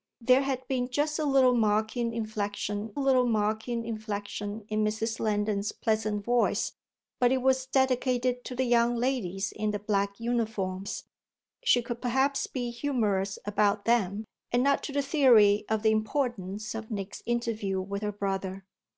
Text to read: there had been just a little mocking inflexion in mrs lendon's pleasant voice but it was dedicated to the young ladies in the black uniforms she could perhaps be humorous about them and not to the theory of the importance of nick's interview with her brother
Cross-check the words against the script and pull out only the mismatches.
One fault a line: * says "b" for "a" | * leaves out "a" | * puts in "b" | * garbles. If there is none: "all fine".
* puts in "little mocking inflexion"